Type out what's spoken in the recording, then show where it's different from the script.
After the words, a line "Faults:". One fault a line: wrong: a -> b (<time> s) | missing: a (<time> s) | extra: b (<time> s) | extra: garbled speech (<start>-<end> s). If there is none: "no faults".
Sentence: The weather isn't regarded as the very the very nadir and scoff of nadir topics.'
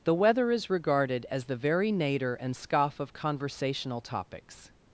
The weather is regarded as the very nadir and scoff of conversational topics.'
Faults:
wrong: isn't -> is (0.5 s)
missing: the very (1.9 s)
wrong: nadir -> conversational (3.1 s)